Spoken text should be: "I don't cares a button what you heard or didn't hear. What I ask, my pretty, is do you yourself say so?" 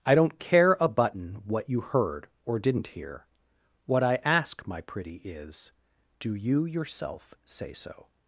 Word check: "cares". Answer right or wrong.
wrong